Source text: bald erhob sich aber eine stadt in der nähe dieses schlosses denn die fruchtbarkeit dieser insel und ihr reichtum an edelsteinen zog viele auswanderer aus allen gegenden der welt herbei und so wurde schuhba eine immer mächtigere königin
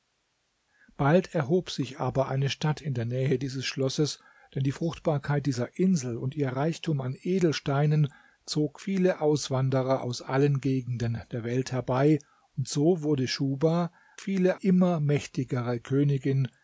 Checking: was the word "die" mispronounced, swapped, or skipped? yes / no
no